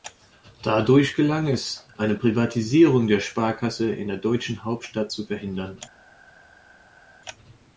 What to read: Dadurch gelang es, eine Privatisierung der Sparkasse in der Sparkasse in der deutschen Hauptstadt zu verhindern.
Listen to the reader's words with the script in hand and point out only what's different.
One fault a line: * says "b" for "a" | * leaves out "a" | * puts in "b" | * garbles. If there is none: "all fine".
* leaves out "Sparkasse in der"